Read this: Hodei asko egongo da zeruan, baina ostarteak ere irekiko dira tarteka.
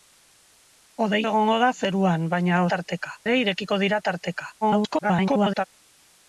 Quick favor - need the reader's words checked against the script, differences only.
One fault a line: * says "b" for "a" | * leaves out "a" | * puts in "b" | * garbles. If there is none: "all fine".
* leaves out "asko"
* says "tarteka" for "ostarteak"
* garbles